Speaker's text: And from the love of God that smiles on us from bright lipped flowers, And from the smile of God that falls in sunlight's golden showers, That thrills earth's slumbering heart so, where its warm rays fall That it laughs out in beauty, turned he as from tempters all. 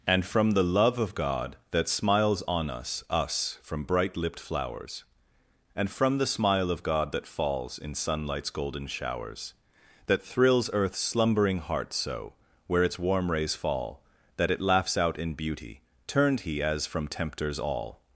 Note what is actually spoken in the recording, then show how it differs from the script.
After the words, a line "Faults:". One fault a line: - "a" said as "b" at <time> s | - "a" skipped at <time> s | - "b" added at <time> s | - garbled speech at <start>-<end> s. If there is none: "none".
And from the love of God that smiles on us us from bright lipped flowers, And from the smile of God that falls in sunlight's golden showers, That thrills earth's slumbering heart so, where its warm rays fall That it laughs out in beauty, turned he as from tempters all.
Faults:
- "us" added at 3.1 s